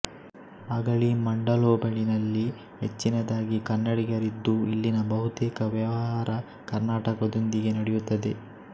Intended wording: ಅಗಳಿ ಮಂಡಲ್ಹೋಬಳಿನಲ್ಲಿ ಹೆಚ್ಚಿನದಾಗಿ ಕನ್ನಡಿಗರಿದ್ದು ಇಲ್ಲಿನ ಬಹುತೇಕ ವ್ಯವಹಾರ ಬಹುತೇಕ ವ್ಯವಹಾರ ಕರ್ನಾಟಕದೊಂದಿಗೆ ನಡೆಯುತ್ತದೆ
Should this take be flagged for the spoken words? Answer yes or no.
yes